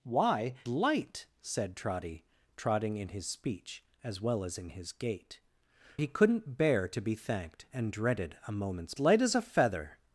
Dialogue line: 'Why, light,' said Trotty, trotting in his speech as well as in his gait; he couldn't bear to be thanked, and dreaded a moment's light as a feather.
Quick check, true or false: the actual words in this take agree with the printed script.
true